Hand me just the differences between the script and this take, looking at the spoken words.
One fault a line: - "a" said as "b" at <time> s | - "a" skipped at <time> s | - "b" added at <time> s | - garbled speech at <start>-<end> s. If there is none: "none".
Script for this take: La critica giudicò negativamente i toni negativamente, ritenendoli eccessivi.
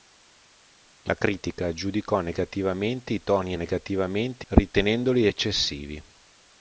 none